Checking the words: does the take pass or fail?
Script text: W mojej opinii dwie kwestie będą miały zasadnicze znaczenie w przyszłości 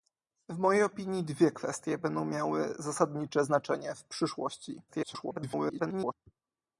fail